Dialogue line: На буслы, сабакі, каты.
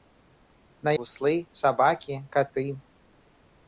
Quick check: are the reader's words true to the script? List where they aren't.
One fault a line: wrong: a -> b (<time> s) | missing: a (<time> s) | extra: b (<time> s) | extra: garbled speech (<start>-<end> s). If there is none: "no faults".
no faults